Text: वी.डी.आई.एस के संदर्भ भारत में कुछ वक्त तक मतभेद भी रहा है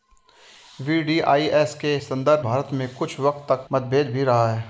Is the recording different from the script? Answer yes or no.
no